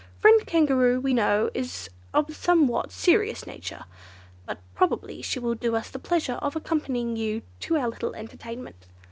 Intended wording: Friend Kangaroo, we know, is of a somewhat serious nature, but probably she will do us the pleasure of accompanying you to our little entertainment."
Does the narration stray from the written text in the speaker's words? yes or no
no